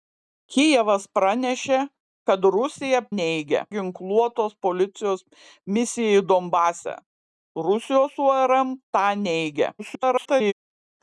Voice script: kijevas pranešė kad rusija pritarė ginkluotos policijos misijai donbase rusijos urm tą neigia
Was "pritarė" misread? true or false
true